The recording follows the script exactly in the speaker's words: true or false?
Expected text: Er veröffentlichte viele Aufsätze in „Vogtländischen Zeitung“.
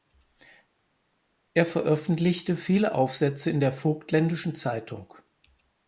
false